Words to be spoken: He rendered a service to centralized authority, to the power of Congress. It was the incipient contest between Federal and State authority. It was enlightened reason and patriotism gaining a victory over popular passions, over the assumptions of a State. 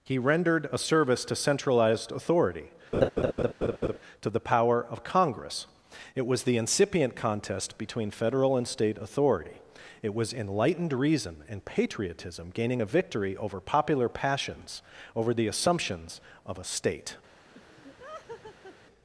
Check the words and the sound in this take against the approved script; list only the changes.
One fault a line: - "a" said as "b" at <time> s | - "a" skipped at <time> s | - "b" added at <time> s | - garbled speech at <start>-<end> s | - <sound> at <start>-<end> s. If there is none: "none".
- laugh at 2.9-4.0 s
- laugh at 17.5-18.8 s